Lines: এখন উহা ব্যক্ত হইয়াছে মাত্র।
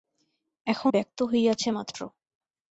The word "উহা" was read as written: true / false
false